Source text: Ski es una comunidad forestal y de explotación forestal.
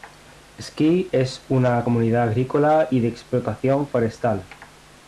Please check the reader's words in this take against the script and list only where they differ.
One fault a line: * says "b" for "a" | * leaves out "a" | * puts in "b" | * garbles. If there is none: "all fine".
* says "agrícola" for "forestal"